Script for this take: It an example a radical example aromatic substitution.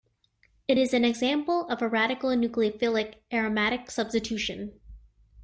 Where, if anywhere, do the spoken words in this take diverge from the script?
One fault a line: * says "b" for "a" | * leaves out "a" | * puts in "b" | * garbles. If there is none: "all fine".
* puts in "is"
* puts in "of"
* says "nucleophilic" for "example"